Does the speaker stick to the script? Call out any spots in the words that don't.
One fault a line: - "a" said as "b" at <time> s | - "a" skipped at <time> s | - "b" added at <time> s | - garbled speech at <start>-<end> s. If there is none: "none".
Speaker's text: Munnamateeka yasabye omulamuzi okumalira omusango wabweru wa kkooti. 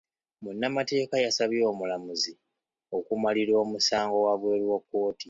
none